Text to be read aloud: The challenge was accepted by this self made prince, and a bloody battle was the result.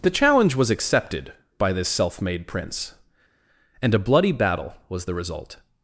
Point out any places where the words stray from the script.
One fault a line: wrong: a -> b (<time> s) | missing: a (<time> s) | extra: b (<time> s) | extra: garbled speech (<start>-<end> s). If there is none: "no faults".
no faults